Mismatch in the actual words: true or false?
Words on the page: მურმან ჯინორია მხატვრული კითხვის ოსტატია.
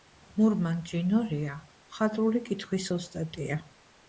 false